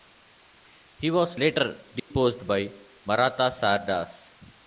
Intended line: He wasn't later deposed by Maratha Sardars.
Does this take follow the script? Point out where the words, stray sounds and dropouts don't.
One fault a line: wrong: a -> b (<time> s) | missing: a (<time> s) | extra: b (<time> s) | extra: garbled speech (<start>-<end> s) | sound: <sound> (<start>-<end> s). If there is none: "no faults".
wrong: wasn't -> was (1.1 s)
sound: dropout (2.0-2.1 s)